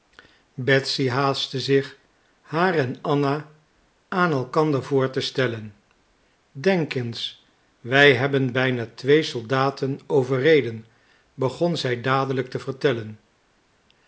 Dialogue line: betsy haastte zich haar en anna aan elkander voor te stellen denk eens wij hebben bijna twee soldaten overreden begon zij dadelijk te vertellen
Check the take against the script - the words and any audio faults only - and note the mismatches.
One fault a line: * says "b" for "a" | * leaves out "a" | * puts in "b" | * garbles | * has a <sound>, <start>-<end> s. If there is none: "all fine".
all fine